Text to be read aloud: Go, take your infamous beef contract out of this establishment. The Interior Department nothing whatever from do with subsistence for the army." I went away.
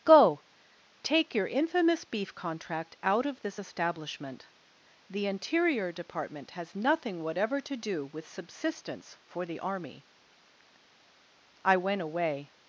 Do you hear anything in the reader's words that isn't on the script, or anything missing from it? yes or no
yes